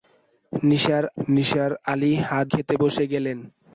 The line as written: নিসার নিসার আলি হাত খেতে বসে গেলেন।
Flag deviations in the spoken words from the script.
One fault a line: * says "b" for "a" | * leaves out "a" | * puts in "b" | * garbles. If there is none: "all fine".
all fine